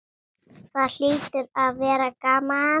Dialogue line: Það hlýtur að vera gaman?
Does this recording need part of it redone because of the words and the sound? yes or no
no